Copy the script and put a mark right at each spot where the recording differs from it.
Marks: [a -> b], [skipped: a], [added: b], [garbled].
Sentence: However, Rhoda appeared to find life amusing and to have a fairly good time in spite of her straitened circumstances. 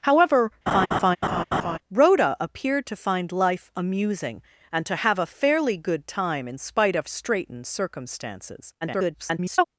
However, Rhoda appeared to find life amusing and to have a fairly good time in spite of [skipped: her] straitened circumstances. [garbled]